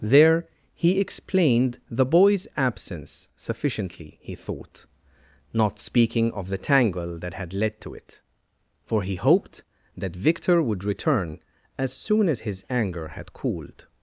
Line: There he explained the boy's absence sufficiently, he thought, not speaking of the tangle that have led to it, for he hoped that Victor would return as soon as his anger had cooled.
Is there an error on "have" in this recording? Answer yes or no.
yes